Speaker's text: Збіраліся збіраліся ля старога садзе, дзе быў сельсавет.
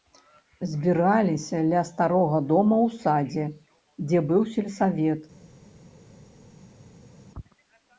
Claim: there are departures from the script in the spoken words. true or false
true